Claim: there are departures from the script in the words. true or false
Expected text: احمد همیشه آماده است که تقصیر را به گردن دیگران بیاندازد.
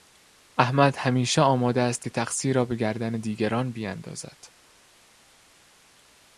false